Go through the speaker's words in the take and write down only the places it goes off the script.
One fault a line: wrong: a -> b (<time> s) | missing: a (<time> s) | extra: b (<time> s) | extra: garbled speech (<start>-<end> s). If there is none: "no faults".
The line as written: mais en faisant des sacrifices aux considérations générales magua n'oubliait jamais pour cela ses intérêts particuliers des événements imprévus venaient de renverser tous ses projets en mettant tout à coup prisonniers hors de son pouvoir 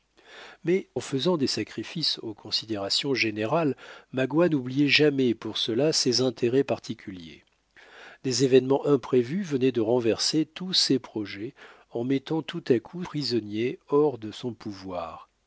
no faults